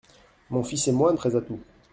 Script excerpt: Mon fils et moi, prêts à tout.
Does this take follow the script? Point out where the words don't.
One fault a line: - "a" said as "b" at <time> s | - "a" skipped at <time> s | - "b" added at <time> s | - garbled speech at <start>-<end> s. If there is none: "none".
none